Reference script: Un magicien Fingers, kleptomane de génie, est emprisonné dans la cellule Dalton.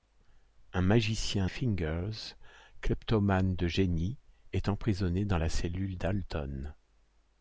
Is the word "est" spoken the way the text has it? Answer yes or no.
yes